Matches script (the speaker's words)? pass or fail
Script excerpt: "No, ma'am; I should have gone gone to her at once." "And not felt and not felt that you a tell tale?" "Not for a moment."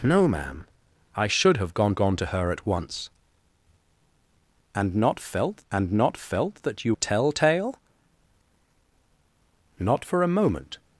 pass